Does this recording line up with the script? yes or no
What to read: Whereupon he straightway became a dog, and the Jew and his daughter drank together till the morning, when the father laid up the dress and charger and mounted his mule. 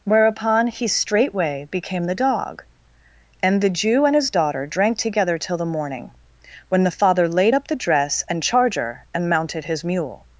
no